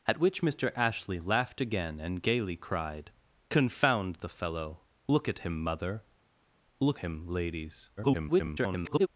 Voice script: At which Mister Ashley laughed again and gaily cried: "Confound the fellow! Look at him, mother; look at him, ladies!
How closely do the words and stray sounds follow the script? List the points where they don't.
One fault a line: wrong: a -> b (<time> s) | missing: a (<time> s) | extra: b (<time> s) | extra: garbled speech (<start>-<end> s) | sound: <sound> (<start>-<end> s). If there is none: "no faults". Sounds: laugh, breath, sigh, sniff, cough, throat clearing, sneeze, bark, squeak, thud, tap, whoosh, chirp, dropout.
missing: at (7.0 s)
extra: garbled speech (8.0-9.1 s)